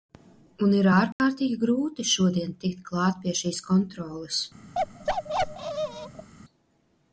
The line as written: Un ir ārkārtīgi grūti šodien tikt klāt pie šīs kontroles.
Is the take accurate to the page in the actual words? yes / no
yes